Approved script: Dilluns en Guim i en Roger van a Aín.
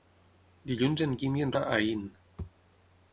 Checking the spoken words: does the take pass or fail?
fail